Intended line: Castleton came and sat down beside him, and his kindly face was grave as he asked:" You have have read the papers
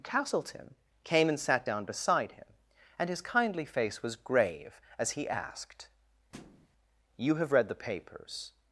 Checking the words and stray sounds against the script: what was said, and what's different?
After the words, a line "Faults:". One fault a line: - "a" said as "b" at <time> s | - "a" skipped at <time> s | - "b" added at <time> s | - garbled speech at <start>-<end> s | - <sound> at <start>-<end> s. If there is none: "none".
Castleton came and sat down beside him, and his kindly face was grave as he asked:" You have read the papers
Faults:
- thud at 6.3-6.7 s
- "have" skipped at 7.5 s